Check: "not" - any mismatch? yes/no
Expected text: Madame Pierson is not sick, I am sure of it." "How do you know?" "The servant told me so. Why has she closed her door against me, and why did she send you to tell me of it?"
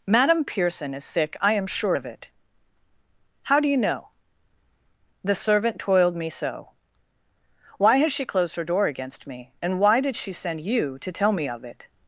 yes